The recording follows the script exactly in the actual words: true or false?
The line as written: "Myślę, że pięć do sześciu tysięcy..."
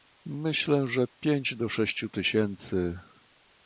true